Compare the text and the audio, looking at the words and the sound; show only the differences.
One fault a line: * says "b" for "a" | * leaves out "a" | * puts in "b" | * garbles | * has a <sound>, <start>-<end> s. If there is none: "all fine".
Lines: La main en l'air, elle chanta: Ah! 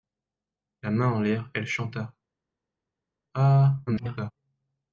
* garbles